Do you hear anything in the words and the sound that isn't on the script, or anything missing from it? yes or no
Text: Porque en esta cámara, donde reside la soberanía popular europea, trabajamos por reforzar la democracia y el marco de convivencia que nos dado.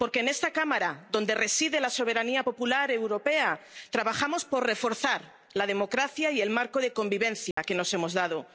yes